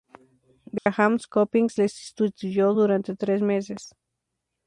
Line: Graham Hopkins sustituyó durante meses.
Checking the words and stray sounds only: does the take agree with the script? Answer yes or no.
no